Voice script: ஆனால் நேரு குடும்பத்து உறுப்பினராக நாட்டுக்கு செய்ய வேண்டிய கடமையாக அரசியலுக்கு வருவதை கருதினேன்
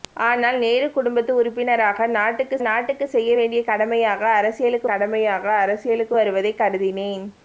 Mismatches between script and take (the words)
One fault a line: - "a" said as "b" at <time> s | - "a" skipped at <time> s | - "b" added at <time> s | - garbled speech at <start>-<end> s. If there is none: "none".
- "நாட்டுக்கு" added at 2.7 s
- "கடமையாக அரசியலுக்கு" added at 4.8 s